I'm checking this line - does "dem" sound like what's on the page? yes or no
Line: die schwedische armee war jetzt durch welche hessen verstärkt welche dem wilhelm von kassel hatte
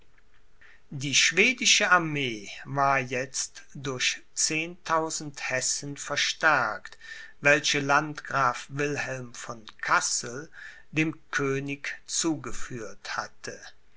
no